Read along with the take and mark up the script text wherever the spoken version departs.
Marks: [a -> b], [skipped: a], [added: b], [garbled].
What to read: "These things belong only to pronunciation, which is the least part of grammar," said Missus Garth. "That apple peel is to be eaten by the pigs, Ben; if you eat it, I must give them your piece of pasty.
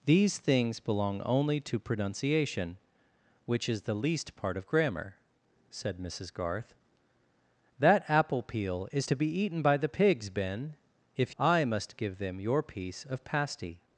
"These things belong only to pronunciation, which is the least part of grammar," said Missus Garth. "That apple peel is to be eaten by the pigs, Ben; if [skipped: you eat it,] I must give them your piece of pasty.